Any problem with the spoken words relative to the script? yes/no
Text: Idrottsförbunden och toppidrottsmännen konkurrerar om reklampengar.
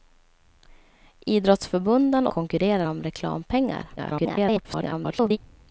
yes